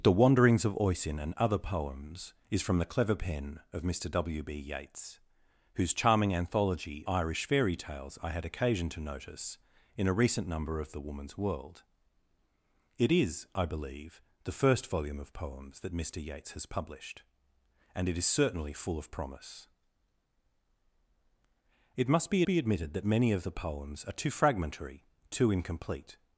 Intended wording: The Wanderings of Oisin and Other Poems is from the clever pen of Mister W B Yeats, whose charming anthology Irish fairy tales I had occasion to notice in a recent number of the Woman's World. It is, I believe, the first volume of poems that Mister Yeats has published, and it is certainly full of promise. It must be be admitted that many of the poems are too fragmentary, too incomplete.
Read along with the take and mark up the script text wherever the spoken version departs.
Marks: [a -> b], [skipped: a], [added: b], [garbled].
The Wanderings of Oisin and Other Poems is from the clever pen of Mister W B Yeats, whose charming anthology Irish fairy tales I had occasion to notice in a recent number of the Woman's World. It is, I believe, the first volume of poems that Mister Yeats has published, and it is certainly full of promise. It must be be admitted that many of the poems are too fragmentary, too incomplete.